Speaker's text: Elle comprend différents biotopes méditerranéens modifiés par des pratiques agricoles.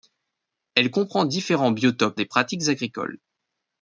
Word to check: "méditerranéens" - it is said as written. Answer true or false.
false